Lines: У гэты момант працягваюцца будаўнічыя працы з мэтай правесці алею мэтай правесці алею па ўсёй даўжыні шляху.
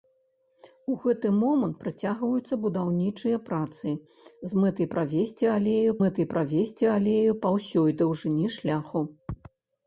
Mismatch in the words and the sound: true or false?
false